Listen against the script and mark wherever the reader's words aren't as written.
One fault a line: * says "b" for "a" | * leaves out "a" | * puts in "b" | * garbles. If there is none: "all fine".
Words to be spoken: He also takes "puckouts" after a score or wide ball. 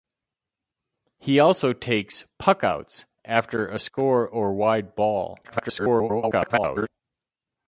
* garbles